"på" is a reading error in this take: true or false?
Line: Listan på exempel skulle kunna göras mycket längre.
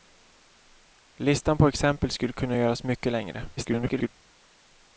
false